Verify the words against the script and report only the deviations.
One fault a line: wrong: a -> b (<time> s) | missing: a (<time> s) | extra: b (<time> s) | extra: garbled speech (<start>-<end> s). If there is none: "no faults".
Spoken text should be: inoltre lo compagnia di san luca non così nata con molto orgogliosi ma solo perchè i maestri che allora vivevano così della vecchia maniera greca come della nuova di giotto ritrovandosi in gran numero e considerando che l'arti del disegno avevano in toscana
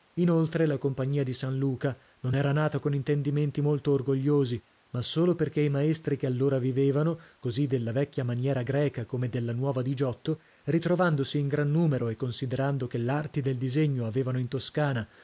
wrong: lo -> la (0.7 s)
wrong: così -> era (2.3 s)
extra: intendimenti (3.0 s)